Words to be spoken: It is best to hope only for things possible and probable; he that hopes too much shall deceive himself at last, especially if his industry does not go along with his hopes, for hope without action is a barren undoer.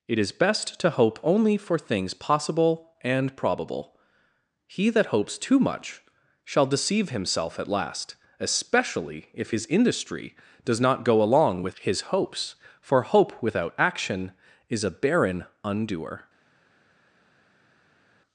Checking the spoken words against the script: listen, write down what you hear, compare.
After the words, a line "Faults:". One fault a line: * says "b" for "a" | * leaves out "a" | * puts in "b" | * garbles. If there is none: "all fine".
It is best to hope only for things possible and probable; he that hopes too much shall deceive himself at last, especially if his industry does not go along with his hopes, for hope without action is a barren undoer.
Faults:
all fine